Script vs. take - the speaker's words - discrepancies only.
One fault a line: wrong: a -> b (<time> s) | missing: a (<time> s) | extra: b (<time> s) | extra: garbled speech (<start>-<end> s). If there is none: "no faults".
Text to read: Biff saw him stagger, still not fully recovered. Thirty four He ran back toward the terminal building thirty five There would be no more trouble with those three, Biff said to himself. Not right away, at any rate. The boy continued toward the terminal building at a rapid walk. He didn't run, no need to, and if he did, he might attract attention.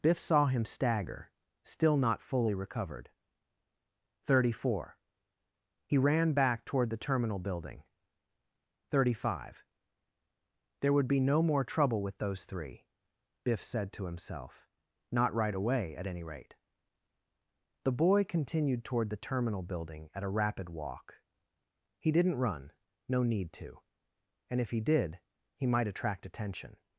no faults